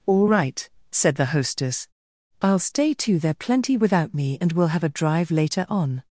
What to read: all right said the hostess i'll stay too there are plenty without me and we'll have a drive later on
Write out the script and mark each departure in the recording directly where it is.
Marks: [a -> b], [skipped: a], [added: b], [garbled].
all right said the hostess i'll stay too there [skipped: are] plenty without me and we'll have a drive later on